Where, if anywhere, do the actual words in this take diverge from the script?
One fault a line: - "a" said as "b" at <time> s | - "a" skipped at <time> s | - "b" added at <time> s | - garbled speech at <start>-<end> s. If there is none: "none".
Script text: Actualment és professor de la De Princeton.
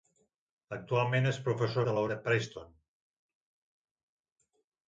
none